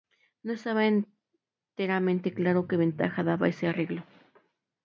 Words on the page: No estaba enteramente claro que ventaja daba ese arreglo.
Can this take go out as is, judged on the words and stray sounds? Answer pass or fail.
pass